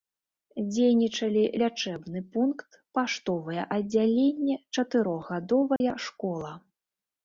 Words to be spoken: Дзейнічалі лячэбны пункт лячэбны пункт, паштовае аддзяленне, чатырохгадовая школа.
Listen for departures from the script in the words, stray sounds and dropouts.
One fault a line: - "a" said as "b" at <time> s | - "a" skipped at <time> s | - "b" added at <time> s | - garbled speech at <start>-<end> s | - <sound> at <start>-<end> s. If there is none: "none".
- "лячэбны пункт" skipped at 2.7 s
- dropout at 5.8-5.8 s